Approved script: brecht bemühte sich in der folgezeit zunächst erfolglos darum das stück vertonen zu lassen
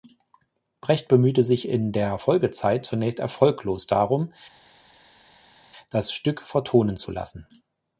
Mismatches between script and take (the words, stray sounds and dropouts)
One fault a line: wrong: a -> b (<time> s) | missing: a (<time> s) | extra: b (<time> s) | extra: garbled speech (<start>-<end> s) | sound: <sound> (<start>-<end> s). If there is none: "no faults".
no faults